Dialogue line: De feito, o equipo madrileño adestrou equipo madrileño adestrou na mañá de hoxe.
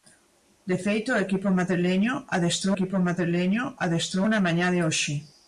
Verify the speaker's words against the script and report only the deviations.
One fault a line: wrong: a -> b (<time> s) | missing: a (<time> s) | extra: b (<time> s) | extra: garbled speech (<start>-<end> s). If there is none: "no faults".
no faults